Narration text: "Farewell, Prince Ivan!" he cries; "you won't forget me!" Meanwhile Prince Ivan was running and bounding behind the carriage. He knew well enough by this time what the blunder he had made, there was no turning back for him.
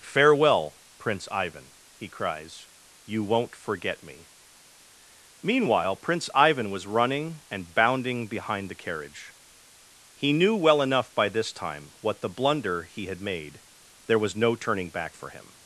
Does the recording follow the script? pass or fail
pass